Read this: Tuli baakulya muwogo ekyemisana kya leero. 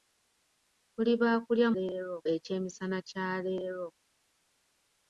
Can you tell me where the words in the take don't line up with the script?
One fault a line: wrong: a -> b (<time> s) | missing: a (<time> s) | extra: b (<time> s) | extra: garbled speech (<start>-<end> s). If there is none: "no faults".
wrong: muwogo -> leero (1.7 s)